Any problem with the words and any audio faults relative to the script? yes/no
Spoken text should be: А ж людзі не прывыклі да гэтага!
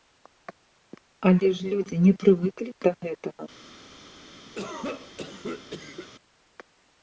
yes